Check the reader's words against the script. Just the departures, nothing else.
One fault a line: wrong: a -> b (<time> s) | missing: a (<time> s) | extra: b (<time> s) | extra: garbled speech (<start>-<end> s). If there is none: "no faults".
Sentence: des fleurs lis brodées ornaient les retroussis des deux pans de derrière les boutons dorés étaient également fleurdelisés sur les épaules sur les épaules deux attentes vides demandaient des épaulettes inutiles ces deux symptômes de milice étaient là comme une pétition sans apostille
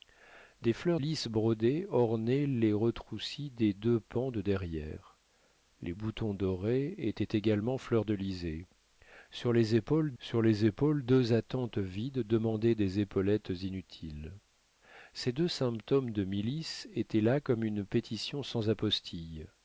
no faults